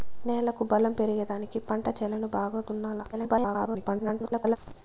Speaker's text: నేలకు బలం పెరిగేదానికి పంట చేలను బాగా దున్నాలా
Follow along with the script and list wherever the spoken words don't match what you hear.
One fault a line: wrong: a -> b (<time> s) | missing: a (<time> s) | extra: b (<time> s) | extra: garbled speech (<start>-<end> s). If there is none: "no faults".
extra: garbled speech (3.1-4.6 s)